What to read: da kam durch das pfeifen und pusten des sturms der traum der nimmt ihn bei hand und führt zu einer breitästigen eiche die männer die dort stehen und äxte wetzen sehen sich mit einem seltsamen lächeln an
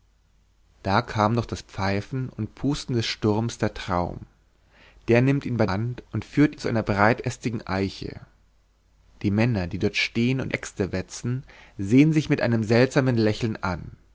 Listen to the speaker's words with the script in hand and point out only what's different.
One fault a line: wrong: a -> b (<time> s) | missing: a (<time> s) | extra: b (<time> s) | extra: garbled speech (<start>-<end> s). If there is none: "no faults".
no faults